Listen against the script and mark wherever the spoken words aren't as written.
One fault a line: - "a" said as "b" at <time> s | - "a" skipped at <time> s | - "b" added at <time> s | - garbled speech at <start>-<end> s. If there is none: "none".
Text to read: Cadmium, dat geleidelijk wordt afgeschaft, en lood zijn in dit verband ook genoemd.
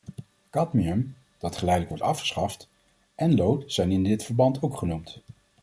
none